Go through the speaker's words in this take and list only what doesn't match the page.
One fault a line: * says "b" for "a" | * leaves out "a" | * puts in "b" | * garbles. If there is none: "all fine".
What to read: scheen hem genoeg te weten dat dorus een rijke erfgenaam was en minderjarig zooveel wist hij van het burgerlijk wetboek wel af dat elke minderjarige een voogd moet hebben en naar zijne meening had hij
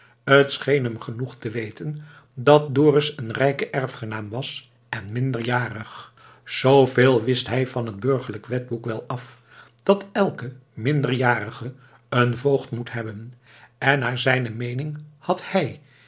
all fine